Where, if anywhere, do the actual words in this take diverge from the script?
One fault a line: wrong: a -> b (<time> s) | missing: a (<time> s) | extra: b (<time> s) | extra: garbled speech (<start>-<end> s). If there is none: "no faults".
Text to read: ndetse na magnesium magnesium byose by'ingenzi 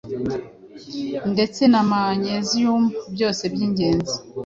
missing: magnesium (2.8 s)